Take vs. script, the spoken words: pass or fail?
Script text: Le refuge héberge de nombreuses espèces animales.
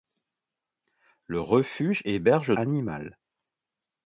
fail